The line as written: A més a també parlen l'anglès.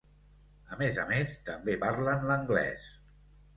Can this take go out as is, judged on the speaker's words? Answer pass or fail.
fail